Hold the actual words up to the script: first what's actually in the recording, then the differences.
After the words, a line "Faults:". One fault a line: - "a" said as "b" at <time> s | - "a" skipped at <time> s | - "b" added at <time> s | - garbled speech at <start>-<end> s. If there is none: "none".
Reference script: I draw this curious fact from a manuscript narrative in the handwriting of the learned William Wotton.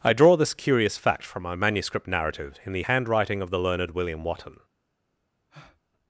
I draw this curious fact from my manuscript narrative in the handwriting of the learned William Wotton.
Faults:
- "a" said as "my" at 1.4 s